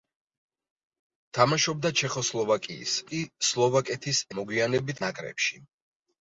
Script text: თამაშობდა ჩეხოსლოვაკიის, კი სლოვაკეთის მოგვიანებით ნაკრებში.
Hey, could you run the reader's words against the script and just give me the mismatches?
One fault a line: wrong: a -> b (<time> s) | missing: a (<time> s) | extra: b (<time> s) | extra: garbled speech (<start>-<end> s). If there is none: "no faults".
no faults